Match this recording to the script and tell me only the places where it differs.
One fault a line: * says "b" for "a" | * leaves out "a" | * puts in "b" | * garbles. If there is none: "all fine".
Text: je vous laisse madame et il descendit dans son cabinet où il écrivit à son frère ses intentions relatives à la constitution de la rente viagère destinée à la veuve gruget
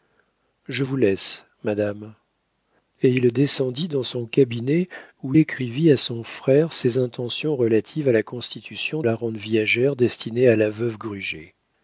* leaves out "il"
* leaves out "de"